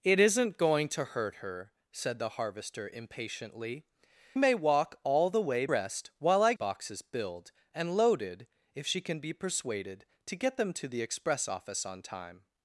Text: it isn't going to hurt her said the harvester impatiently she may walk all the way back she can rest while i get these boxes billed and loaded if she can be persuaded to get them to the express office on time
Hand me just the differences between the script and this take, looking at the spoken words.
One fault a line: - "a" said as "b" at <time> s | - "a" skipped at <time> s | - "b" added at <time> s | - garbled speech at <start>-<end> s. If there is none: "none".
- "she" skipped at 3.9 s
- "back she can" skipped at 5.7 s
- "get these" skipped at 6.5 s